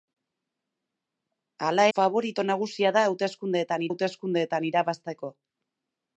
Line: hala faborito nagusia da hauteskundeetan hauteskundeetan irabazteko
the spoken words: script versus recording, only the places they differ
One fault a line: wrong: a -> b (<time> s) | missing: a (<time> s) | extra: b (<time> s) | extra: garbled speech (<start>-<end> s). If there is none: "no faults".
no faults